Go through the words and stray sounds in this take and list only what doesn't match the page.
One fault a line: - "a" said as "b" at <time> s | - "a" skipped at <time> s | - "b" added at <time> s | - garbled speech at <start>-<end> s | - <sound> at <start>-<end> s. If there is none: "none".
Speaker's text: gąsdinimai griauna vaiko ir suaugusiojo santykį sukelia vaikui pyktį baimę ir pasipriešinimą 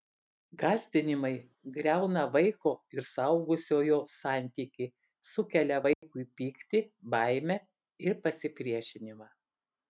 - dropout at 5.9-6.0 s